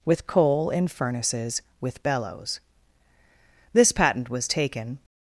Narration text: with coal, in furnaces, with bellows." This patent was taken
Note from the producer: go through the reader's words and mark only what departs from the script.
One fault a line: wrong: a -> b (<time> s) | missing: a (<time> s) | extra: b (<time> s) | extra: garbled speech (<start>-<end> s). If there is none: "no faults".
no faults